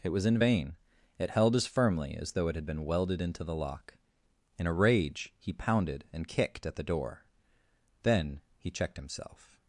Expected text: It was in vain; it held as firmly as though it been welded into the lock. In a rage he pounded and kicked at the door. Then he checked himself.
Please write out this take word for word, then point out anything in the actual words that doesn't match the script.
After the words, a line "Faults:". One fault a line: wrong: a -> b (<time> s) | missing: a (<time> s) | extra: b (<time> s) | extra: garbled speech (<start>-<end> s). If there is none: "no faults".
It was in vain; it held as firmly as though it had been welded into the lock. In a rage he pounded and kicked at the door. Then he checked himself.
Faults:
extra: had (2.5 s)